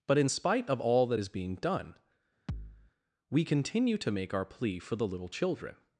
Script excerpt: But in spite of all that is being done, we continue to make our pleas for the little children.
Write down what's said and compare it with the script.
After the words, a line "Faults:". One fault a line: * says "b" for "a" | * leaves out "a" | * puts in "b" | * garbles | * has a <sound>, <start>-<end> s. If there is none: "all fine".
But in spite of all that is being done, we continue to make our plea for the little children.
Faults:
* has a thud, 2.5-2.9 s
* says "plea" for "pleas"